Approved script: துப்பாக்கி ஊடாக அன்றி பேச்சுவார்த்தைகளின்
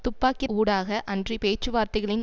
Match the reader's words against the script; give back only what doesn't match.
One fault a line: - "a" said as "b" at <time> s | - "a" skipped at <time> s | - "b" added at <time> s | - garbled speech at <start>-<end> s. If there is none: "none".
none